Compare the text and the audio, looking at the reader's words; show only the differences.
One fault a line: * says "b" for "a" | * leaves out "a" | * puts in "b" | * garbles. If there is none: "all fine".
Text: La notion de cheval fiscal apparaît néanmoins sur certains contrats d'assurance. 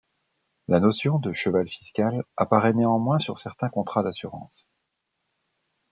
all fine